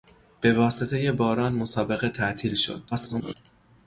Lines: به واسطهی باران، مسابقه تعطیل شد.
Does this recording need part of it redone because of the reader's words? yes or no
yes